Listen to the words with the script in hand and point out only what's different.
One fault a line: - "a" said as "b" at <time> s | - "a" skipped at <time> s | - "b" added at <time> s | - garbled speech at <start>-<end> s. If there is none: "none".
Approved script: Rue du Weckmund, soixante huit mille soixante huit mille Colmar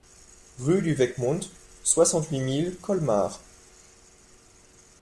- "soixante huit mille" skipped at 2.8 s